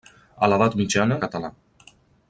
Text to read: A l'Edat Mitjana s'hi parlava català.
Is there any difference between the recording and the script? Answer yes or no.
yes